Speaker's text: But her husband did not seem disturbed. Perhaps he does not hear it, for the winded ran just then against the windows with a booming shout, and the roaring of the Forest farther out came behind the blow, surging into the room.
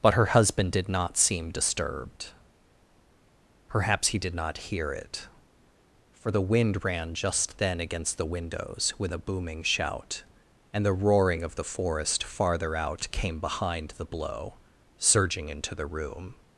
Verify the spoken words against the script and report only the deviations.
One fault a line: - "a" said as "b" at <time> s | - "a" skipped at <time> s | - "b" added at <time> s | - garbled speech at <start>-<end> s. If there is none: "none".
- "does" said as "did" at 4.2 s
- "winded" said as "wind" at 6.4 s